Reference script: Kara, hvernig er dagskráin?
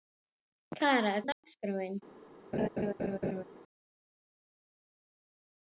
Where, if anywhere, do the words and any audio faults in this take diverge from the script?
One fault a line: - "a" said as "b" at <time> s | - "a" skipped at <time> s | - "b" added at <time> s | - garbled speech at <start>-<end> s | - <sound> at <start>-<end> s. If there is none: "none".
- "hvernig" skipped at 1.1 s
- dropout at 1.3-1.4 s
- laugh at 2.5-3.4 s